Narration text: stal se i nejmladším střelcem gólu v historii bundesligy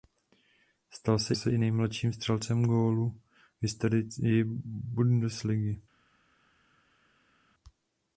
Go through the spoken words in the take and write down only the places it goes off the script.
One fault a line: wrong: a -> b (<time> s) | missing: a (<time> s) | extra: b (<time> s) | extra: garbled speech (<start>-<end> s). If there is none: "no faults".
extra: se (1.3 s)